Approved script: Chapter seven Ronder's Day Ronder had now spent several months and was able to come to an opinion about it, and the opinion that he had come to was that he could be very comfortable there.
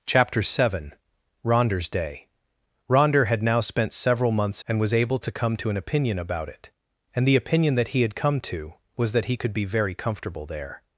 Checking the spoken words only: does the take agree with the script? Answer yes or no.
yes